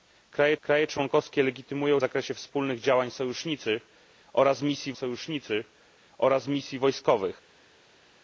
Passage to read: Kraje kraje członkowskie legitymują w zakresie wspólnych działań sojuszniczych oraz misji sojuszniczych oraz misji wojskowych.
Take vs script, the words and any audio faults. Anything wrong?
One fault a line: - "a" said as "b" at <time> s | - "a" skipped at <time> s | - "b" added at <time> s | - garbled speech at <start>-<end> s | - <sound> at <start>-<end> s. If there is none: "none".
none